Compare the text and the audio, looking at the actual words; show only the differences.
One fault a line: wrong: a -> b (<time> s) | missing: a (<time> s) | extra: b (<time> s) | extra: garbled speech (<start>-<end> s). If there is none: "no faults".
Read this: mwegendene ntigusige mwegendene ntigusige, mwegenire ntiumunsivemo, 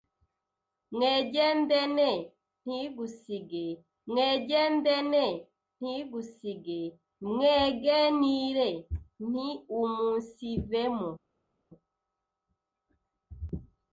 no faults